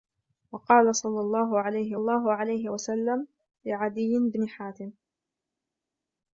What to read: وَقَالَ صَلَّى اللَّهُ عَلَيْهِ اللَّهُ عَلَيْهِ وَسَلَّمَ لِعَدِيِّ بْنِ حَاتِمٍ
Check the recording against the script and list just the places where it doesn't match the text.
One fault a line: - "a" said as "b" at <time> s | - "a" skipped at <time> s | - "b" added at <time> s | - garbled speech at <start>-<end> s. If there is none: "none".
none